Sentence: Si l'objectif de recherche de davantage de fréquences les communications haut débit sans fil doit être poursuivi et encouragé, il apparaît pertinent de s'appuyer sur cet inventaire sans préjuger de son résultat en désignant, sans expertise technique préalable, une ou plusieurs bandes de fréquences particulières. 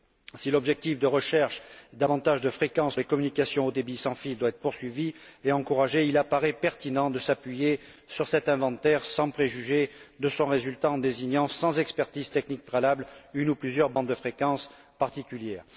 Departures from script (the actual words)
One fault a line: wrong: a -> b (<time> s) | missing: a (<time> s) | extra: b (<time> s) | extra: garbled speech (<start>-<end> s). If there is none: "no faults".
no faults